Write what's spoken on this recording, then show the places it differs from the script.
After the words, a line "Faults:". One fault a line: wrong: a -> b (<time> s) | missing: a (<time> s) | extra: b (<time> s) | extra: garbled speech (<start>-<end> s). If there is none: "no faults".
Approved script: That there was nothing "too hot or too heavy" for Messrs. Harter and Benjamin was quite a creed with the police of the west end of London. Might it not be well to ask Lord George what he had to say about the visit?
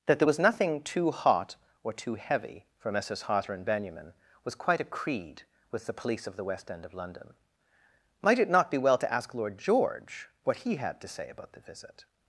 That there was nothing "too hot or too heavy" for Messrs. Harter and Benjamin was quite a creed with the police of the west end of London. Might it not be well to ask Lord George what he had to say about the visit?
Faults:
no faults